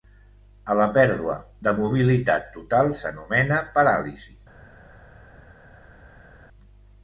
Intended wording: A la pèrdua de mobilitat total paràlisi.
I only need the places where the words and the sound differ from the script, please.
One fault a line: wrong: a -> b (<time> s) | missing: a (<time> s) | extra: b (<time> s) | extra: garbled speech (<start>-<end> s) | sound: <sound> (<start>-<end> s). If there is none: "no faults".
extra: s'anomena (3.0 s)